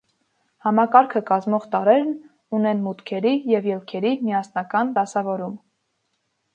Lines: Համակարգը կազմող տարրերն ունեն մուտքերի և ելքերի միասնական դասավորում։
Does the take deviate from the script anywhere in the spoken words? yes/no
no